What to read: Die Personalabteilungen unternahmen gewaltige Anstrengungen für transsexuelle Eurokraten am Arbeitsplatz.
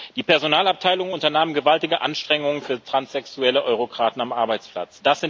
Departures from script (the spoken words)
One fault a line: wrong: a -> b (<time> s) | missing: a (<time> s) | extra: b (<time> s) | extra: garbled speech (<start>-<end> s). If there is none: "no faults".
no faults